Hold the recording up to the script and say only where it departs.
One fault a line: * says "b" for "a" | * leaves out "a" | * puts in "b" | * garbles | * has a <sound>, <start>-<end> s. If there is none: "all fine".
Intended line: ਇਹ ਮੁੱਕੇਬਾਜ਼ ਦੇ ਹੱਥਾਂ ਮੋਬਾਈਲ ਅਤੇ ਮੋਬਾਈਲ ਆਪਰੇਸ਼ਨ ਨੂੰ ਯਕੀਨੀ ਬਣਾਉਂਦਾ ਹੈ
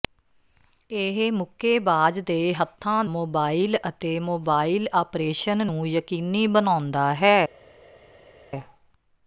all fine